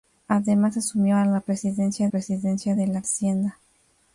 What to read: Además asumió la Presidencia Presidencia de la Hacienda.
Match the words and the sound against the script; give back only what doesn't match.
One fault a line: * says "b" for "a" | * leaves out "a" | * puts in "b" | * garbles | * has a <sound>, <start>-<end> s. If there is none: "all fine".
all fine